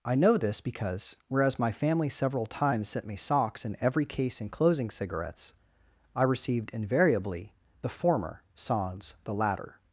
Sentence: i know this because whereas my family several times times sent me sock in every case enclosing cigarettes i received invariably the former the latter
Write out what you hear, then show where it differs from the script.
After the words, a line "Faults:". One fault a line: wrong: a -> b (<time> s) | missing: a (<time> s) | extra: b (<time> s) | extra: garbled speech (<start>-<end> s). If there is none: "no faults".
i know this because whereas my family several times sent me socks in every case enclosing cigarettes i received invariably the former sans the latter
Faults:
missing: times (2.9 s)
wrong: sock -> socks (3.2 s)
extra: sans (8.5 s)